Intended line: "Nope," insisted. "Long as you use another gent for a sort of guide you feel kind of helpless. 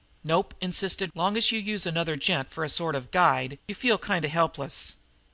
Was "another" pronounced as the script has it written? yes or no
yes